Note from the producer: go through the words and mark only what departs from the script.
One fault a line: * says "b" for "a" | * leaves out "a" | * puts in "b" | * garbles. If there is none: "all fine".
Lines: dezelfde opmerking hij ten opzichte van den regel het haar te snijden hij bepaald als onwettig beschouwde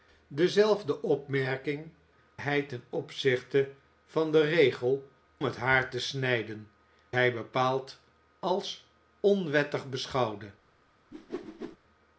all fine